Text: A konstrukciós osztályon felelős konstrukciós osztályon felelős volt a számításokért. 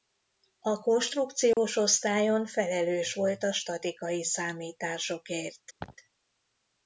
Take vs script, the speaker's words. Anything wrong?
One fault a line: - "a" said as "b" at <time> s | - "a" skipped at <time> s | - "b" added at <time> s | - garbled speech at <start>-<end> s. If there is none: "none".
- "konstrukciós osztályon felelős" skipped at 3.1 s
- "statikai" added at 3.5 s